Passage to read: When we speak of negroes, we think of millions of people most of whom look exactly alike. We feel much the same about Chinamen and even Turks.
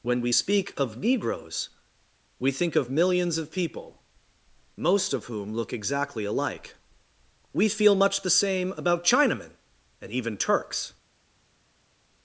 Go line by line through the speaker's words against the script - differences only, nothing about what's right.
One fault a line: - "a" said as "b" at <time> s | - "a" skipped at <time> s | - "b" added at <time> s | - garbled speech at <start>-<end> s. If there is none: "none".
none